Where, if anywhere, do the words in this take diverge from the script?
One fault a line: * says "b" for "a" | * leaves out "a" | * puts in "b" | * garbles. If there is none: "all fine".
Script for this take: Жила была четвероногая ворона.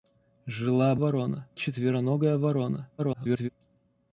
* says "ворона" for "была"
* garbles